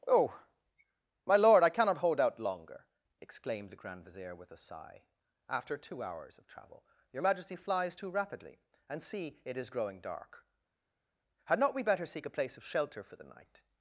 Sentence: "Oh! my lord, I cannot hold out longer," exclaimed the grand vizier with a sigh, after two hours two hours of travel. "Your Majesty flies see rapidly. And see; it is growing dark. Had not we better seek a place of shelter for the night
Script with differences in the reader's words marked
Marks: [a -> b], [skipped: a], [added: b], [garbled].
"Oh! my lord, I cannot hold out longer," exclaimed the grand vizier with a sigh, after two hours [skipped: two hours] of travel. "Your Majesty flies [see -> too] rapidly. And see; it is growing dark. Had not we better seek a place of shelter for the night